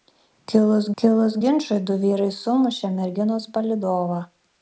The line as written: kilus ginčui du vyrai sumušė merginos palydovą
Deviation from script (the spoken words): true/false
true